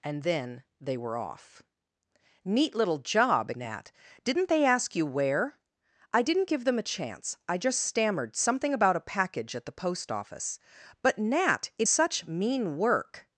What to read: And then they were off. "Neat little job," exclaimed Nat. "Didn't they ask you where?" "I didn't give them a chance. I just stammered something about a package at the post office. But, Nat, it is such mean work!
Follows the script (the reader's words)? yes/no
no